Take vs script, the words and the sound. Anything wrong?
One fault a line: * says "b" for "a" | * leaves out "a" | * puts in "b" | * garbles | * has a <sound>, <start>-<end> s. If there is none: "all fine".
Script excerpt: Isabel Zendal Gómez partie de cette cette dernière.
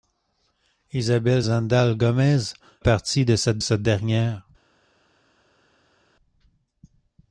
all fine